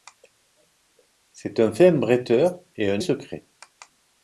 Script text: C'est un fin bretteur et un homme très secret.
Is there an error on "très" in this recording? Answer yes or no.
yes